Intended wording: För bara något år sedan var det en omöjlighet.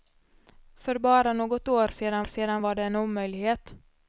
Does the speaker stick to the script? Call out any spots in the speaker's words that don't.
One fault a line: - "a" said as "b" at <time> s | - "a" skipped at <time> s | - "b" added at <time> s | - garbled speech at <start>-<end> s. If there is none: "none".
- "sedan" added at 2.2 s